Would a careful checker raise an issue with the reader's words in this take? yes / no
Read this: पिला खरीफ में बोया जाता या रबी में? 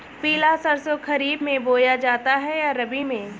yes